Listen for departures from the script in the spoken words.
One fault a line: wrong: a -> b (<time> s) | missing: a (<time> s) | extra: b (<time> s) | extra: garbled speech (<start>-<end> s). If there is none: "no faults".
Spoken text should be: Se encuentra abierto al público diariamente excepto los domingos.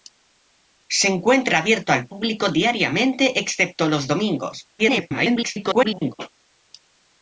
extra: garbled speech (4.8-6.1 s)